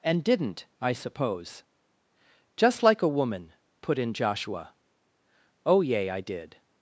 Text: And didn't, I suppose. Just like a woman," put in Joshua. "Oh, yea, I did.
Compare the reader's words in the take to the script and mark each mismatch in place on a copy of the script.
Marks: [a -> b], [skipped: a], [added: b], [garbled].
And didn't, I suppose. Just like a woman," put in Joshua. "Oh, yea, I did.